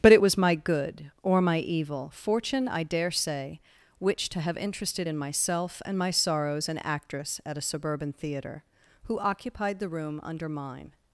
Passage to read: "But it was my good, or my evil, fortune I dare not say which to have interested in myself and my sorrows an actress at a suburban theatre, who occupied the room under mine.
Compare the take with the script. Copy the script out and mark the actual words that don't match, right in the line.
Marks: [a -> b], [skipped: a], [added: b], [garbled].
"But it was my good, or my evil, fortune I dare [skipped: not] say which to have interested in myself and my sorrows an actress at a suburban theatre, who occupied the room under mine.